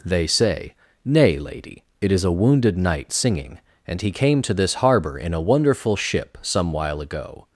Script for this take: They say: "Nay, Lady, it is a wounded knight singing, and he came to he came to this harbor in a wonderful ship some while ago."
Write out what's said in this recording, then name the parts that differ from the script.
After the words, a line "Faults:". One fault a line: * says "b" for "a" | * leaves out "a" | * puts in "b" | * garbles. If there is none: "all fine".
They say: "Nay, Lady, it is a wounded knight singing, and he came to this harbor in a wonderful ship some while ago."
Faults:
* leaves out "he came to"